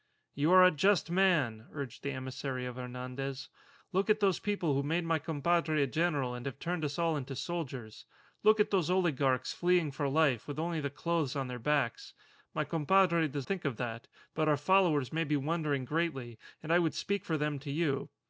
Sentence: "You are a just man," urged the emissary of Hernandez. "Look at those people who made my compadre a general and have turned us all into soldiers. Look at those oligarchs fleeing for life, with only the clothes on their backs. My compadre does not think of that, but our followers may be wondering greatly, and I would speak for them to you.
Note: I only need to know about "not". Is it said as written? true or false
false